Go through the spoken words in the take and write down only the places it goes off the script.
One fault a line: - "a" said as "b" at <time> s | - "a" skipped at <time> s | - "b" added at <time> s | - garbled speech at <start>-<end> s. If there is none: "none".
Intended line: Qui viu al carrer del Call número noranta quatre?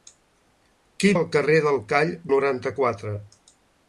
- "viu" skipped at 1.1 s
- "número" skipped at 2.1 s